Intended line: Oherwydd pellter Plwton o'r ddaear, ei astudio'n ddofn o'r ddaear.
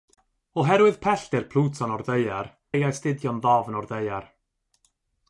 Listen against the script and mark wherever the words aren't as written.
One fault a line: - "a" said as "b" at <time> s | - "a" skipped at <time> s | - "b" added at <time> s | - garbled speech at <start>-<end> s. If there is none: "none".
none